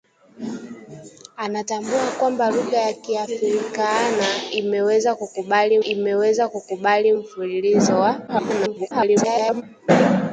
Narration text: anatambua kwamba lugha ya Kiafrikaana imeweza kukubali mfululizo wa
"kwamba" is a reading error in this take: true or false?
false